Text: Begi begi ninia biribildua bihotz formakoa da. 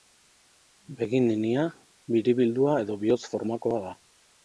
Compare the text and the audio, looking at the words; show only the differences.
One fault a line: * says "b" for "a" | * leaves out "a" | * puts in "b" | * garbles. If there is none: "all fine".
* leaves out "begi"
* puts in "edo"